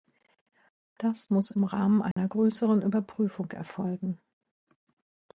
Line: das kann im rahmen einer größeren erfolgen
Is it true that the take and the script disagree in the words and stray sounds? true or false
true